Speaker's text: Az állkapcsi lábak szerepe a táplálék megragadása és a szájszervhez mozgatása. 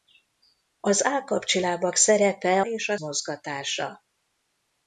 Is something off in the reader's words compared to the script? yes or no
yes